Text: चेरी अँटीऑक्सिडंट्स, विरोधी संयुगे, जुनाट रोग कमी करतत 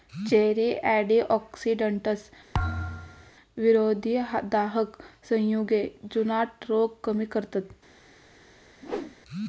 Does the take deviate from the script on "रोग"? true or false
false